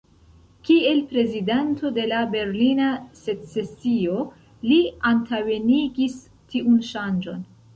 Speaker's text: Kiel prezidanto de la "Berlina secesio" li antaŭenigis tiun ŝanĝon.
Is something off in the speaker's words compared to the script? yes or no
no